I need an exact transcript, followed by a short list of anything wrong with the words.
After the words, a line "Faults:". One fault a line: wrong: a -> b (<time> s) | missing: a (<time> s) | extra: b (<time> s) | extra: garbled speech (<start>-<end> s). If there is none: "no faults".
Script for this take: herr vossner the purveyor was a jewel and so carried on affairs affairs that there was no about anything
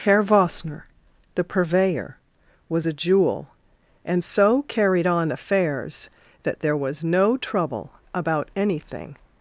herr vossner the purveyor was a jewel and so carried on affairs that there was no trouble about anything
Faults:
missing: affairs (6.1 s)
extra: trouble (7.3 s)